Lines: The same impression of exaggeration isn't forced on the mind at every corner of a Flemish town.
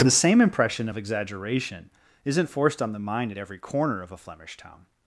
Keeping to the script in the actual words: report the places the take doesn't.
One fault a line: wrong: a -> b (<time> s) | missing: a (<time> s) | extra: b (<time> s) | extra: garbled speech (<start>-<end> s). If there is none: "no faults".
no faults